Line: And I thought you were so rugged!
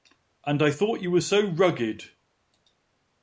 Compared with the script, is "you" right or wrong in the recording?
right